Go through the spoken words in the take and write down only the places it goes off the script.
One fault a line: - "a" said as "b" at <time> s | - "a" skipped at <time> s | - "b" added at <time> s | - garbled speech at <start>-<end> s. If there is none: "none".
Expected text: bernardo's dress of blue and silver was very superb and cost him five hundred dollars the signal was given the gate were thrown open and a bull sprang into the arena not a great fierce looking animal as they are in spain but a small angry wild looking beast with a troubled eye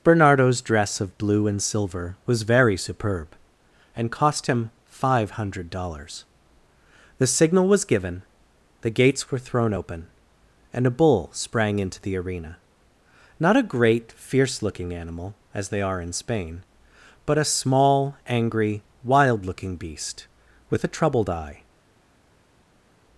- "gate" said as "gates" at 8.9 s